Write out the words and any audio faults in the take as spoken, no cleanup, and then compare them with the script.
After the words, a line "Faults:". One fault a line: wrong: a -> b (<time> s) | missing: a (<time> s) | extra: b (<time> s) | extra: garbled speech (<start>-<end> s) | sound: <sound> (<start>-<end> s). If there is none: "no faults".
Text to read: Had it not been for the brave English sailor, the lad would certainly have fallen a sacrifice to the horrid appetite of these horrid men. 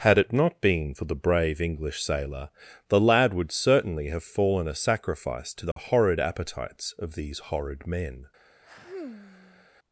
Had it not been for the brave English sailor, the lad would certainly have fallen a sacrifice to the horrid appetites of these horrid men.
Faults:
sound: dropout (5.7-5.8 s)
wrong: appetite -> appetites (6.2 s)
sound: sigh (8.6-9.7 s)